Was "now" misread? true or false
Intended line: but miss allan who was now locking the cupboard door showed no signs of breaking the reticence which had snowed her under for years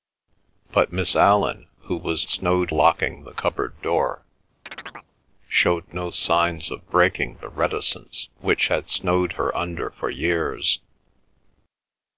true